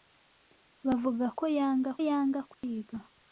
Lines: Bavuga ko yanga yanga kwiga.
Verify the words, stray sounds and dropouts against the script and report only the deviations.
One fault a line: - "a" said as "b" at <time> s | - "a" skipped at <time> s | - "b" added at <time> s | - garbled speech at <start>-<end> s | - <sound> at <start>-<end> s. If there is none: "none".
- dropout at 2.5-2.6 s